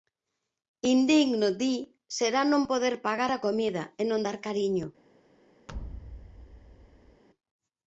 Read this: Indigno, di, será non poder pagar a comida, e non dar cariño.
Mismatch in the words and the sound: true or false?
true